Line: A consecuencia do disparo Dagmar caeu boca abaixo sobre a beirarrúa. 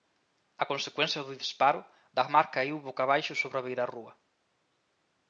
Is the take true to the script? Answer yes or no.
yes